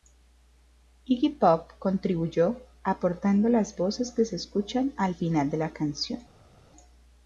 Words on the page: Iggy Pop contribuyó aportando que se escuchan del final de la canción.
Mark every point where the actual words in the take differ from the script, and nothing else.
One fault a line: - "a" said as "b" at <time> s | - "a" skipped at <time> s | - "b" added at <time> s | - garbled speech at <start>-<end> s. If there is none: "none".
- "las voces" added at 3.5 s
- "del" said as "al" at 5.0 s